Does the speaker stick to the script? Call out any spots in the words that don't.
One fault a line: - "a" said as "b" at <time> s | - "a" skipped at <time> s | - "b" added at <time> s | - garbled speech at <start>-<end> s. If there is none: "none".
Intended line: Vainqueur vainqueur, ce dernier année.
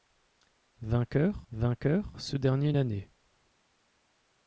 none